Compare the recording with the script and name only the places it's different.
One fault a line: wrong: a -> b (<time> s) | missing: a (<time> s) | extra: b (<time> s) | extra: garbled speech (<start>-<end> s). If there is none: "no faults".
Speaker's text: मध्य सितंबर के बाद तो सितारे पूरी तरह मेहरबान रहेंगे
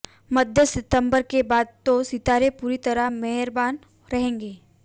no faults